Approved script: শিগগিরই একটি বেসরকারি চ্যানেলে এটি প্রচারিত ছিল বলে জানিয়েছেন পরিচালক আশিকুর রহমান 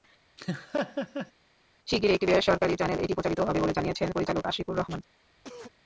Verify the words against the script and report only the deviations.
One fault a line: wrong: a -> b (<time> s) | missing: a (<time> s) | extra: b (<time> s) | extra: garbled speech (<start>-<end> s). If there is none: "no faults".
wrong: ছিল -> হবে (3.4 s)